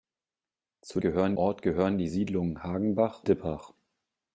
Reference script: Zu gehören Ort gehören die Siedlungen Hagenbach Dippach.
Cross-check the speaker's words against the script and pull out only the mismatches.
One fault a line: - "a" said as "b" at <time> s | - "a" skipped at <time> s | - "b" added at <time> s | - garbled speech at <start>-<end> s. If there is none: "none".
none